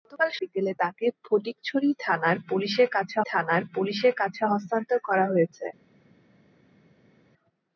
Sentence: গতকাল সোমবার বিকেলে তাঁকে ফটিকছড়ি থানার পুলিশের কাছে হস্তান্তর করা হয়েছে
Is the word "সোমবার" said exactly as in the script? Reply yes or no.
no